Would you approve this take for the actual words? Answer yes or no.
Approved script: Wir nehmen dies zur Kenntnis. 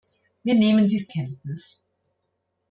no